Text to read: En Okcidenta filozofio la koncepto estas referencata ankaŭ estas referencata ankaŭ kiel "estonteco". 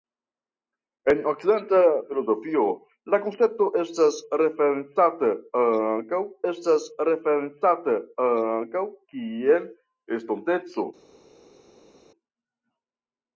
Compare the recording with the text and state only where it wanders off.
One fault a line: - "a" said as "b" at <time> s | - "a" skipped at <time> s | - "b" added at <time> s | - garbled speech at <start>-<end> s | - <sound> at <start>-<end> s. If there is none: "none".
none